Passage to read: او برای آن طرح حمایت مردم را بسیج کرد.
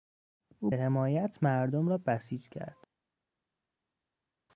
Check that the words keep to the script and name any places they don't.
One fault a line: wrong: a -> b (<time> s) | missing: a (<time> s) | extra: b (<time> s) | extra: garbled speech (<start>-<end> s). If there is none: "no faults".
missing: برای آن طرح (0.7 s)